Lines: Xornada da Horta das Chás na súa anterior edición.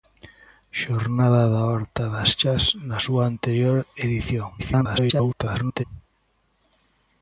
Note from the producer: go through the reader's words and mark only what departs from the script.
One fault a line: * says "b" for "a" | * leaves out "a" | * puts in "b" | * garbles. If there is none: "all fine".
* garbles